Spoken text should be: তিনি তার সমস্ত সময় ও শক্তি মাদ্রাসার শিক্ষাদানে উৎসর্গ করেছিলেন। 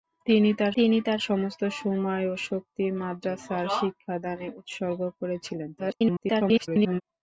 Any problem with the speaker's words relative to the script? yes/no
yes